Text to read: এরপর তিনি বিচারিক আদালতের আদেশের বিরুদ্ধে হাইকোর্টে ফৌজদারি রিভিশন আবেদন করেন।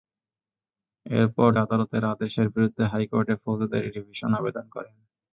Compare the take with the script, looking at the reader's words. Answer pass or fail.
fail